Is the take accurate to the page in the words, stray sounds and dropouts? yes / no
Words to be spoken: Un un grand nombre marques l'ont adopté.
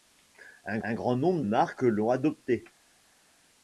yes